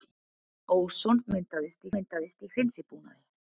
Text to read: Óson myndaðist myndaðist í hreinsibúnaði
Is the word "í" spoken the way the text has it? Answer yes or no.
yes